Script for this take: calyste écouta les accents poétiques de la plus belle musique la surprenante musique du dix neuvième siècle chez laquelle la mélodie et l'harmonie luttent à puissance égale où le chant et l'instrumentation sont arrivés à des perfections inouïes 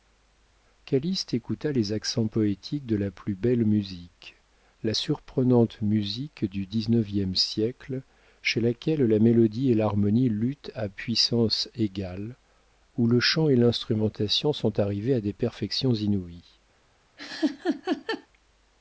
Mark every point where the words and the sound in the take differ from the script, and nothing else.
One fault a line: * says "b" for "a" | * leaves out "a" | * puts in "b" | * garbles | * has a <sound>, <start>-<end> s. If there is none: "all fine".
* has a laugh, 17.2-18.3 s